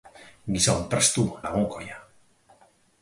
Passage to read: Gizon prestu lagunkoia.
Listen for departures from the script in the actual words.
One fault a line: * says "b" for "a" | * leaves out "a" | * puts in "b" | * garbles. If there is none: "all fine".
all fine